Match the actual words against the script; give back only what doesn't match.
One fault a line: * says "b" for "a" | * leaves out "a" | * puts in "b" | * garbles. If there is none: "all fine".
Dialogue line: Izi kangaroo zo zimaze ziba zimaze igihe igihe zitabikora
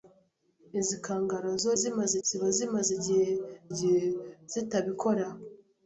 all fine